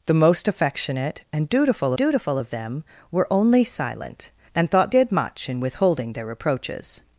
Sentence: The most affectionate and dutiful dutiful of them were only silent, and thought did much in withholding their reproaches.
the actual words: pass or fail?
pass